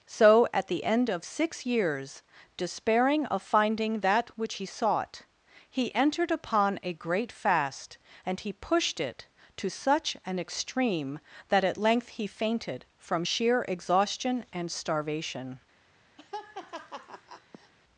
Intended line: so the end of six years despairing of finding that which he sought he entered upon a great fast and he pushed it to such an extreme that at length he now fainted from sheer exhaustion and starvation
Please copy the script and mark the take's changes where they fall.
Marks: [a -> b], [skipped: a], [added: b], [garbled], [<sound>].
so [added: at] the end of six years despairing of finding that which he sought he entered upon a great fast and he pushed it to such an extreme that at length he [skipped: now] fainted from sheer exhaustion and starvation [laugh]